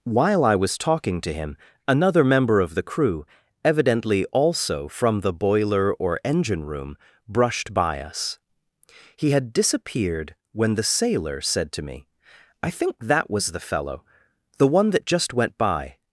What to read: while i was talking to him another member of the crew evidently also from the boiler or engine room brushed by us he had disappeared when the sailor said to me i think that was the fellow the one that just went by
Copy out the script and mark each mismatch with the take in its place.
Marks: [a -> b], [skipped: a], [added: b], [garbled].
while i was talking to him another member of the crew evidently also from the boiler or engine room brushed by us he had disappeared when the sailor said to me i think that was the fellow the one that just went by